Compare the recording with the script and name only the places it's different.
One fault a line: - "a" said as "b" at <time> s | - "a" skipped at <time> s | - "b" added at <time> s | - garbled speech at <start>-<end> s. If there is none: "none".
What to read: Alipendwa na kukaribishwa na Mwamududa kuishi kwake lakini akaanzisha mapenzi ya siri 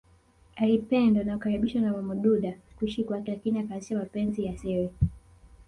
none